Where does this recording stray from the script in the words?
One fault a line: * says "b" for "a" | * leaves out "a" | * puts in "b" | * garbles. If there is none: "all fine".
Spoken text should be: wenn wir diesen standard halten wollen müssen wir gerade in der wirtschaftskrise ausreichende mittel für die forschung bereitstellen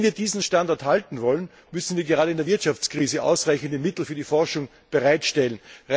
all fine